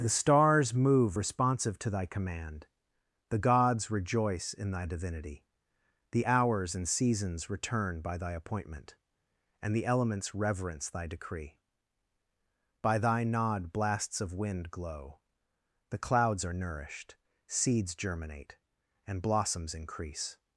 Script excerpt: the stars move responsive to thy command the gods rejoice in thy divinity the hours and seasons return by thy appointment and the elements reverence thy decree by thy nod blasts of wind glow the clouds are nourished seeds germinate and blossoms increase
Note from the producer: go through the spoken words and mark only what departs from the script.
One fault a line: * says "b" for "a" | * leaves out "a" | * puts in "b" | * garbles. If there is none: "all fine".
all fine